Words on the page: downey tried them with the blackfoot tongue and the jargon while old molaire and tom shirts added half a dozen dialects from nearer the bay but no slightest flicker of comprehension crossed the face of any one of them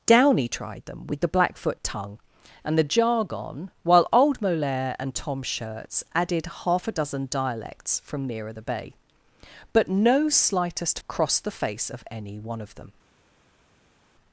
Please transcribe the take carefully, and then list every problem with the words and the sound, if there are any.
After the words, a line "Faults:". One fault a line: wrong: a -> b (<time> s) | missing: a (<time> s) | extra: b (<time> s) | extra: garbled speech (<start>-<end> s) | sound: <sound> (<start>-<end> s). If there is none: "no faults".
downey tried them with the blackfoot tongue and the jargon while old molaire and tom shirts added half a dozen dialects from nearer the bay but no slightest crossed the face of any one of them
Faults:
missing: flicker of comprehension (11.0 s)